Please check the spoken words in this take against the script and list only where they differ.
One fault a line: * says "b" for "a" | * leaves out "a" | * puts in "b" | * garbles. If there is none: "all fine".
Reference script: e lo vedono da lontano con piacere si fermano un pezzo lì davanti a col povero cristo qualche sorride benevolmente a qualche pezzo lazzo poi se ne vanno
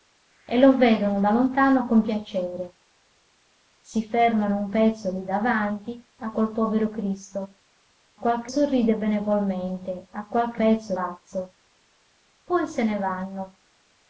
all fine